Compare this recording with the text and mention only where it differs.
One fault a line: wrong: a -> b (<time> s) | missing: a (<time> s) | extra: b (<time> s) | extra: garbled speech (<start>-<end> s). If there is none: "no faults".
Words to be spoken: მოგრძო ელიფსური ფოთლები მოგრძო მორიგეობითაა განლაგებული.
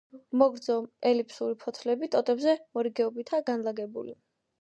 wrong: მოგრძო -> ტოტებზე (2.2 s)